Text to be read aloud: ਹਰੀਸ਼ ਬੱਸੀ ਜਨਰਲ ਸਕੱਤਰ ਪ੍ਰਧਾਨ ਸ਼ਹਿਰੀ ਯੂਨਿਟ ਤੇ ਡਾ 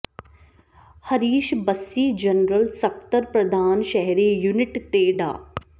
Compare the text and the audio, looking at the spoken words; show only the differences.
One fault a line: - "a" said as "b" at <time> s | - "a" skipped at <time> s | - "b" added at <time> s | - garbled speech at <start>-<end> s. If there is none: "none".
none